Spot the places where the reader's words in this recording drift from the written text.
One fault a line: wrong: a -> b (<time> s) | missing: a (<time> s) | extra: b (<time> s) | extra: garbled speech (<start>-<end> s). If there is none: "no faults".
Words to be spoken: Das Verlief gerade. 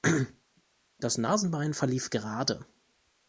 extra: Nasenbein (1.2 s)